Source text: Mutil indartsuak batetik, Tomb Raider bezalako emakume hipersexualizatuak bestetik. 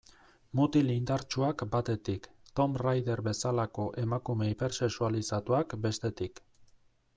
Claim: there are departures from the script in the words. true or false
false